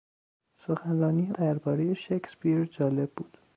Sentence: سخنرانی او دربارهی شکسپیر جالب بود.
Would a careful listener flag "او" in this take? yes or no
yes